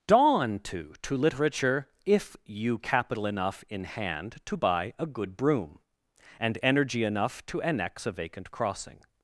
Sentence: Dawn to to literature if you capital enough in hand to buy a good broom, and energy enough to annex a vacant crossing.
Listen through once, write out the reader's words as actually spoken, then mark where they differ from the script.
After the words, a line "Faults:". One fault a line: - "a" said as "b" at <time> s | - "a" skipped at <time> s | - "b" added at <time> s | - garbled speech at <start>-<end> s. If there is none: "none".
Dawn to to literature if you capital enough in hand to buy a good broom, and energy enough to annex a vacant crossing.
Faults:
none